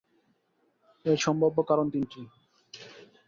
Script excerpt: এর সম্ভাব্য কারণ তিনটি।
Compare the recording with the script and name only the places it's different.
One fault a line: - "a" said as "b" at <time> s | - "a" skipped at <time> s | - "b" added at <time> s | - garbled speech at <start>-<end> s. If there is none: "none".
none